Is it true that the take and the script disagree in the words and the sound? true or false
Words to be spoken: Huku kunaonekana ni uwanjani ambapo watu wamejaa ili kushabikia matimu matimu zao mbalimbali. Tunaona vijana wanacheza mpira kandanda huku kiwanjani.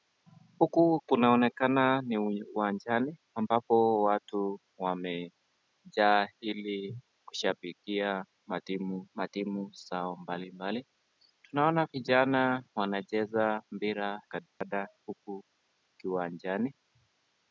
true